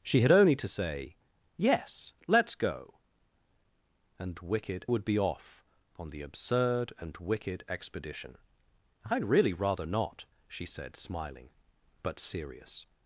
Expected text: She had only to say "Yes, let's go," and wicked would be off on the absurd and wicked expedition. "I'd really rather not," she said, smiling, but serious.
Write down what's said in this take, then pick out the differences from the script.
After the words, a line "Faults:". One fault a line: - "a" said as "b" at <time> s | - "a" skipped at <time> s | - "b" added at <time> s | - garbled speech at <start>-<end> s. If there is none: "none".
She had only to say "Yes, let's go," and wicked would be off on the absurd and wicked expedition. "I'd really rather not," she said, smiling, but serious.
Faults:
none